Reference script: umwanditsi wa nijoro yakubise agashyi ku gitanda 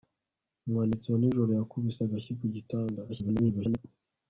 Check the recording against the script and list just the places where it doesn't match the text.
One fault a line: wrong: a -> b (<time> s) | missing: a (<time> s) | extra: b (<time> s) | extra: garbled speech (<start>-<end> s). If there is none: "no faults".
extra: garbled speech (3.1-3.8 s)